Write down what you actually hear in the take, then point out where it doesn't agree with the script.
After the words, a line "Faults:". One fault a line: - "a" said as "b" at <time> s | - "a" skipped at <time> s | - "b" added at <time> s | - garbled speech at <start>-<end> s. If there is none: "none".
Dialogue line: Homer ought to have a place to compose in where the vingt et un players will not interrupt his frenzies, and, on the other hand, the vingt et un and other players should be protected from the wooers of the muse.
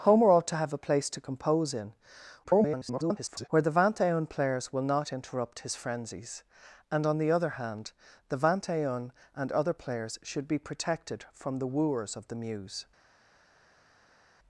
Homer ought to have a place to compose in [garbled] where the vingt et un players will not interrupt his frenzies, and, on the other hand, the vingt et un and other players should be protected from the wooers of the muse.
Faults:
- garbled speech at 2.4-3.5 s